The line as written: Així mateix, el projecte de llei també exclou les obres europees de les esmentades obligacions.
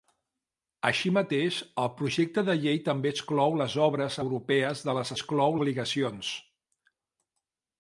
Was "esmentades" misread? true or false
true